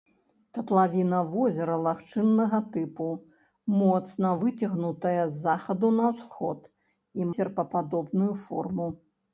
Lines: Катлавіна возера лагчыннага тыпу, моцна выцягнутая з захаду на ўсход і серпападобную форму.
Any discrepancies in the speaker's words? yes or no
no